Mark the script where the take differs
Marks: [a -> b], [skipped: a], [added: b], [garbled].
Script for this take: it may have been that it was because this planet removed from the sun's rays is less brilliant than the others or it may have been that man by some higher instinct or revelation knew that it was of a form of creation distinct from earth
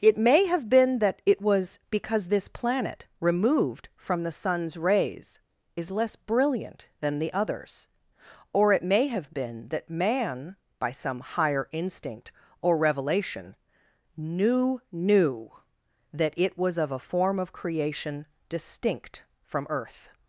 it may have been that it was because this planet removed from the sun's rays is less brilliant than the others or it may have been that man by some higher instinct or revelation knew [added: knew] that it was of a form of creation distinct from earth